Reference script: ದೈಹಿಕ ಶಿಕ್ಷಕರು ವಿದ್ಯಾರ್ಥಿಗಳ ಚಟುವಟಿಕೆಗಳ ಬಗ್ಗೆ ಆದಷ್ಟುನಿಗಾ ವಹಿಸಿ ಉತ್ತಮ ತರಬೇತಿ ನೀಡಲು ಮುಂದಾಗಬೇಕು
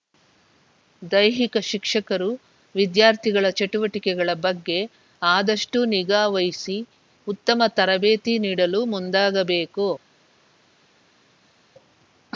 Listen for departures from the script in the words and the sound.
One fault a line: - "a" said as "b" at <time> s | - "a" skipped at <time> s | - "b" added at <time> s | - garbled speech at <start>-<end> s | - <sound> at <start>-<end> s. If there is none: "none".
none